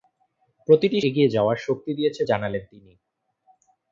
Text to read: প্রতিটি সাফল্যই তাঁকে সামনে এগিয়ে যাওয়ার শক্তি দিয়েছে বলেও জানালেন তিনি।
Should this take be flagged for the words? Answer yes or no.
yes